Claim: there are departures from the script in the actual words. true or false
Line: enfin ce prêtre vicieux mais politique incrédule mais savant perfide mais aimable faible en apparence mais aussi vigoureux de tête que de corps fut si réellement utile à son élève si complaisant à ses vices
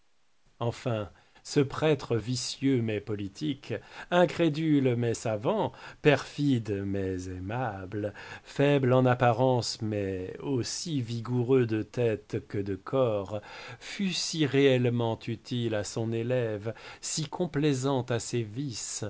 false